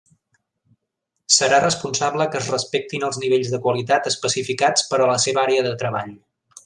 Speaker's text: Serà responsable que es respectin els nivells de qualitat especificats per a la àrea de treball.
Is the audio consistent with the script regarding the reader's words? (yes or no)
no